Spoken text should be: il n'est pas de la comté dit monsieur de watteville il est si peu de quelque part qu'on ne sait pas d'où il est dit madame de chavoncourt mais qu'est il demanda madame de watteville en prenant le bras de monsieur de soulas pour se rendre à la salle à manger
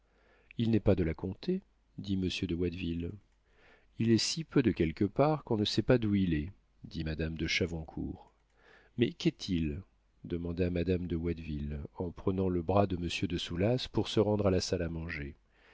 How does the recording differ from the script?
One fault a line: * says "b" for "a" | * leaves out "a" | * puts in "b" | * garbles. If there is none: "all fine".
all fine